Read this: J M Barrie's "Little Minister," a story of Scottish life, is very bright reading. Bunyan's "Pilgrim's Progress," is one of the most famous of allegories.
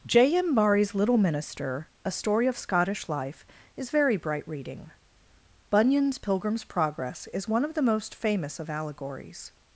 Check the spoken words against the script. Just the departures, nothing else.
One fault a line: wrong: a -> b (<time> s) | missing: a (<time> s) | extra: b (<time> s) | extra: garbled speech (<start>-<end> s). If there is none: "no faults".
no faults